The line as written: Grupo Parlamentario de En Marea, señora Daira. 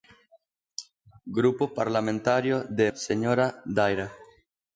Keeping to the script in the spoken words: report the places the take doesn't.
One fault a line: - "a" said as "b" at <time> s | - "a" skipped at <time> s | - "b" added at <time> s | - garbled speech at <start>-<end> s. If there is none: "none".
- "En Marea" skipped at 2.9 s